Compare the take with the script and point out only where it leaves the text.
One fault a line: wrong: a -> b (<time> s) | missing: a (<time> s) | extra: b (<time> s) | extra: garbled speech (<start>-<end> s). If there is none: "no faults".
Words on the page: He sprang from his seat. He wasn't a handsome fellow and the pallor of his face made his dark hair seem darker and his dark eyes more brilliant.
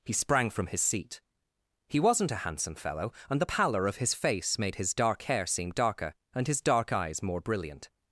no faults